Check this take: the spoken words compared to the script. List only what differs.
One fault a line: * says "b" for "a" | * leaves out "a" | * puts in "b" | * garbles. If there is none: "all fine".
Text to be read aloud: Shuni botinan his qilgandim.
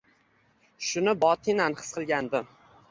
all fine